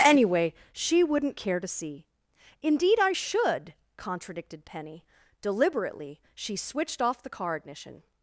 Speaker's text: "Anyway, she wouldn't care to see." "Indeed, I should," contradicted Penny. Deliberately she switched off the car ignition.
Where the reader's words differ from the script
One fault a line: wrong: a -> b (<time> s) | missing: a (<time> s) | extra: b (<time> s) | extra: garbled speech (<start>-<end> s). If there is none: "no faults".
no faults